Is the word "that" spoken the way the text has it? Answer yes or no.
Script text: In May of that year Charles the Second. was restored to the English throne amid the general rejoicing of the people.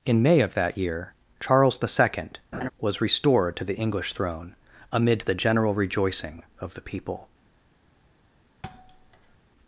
yes